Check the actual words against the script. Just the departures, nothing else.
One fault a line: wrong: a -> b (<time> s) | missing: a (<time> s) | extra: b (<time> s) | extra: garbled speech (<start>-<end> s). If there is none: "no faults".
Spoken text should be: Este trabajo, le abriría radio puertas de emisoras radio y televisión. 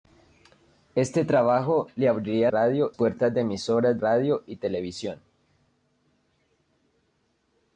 no faults